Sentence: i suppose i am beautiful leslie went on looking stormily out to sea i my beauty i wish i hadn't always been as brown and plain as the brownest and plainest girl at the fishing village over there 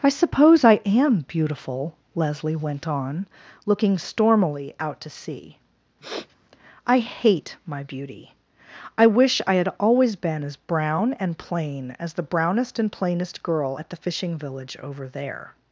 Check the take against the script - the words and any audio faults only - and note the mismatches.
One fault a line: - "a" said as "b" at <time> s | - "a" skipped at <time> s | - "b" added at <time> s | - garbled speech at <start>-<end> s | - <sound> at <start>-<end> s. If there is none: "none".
- sniff at 6.0-6.4 s
- "hate" added at 7.0 s
- "hadn't" said as "had" at 9.5 s